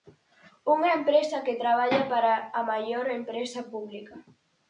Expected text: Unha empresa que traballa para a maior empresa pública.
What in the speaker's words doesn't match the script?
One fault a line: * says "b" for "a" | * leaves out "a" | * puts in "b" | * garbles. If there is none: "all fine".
all fine